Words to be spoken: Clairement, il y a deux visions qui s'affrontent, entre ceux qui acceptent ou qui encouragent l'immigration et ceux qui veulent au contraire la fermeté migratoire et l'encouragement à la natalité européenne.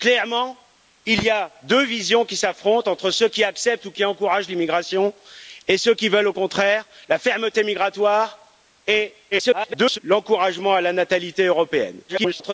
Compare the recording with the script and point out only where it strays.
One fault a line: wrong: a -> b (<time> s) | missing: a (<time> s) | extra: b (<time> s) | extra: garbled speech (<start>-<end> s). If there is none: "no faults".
extra: garbled speech (9.3-10.0 s)
extra: garbled speech (12.1-12.5 s)